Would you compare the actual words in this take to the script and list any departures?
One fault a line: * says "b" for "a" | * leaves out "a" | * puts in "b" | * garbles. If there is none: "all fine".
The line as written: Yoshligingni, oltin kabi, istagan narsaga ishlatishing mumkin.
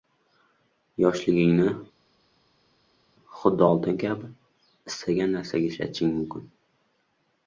* puts in "xuddi"